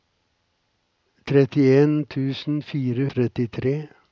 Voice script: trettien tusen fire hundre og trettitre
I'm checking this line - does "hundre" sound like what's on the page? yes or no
no